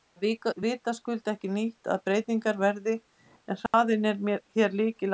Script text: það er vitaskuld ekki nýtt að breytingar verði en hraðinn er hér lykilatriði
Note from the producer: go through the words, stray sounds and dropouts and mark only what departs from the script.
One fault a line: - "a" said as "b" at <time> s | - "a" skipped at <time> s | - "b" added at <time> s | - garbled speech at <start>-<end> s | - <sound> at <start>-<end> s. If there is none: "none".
- dropout at 3.7-3.7 s